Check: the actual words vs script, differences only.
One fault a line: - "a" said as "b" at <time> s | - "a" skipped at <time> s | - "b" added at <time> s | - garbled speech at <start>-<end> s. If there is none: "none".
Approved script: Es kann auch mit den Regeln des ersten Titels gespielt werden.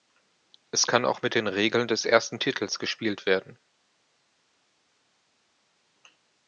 none